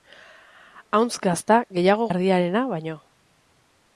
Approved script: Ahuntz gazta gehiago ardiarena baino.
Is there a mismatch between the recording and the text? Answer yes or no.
no